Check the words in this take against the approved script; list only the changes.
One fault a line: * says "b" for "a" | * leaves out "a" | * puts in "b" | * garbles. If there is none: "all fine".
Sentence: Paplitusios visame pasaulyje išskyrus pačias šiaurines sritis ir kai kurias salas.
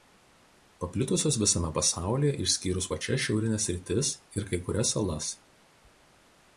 all fine